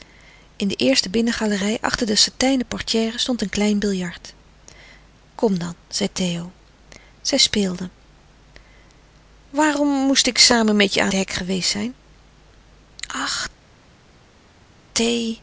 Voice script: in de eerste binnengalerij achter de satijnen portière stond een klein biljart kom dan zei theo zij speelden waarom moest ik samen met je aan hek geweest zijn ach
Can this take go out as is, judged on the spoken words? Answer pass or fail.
pass